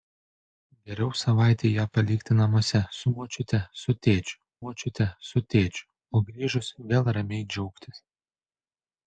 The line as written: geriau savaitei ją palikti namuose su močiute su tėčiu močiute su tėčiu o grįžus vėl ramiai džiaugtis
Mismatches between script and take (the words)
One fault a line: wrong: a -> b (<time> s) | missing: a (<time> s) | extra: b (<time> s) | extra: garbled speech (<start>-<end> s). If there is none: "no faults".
no faults